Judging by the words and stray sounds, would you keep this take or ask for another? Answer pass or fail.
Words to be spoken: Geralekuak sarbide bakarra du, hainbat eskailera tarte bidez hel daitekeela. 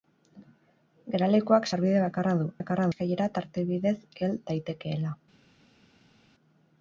fail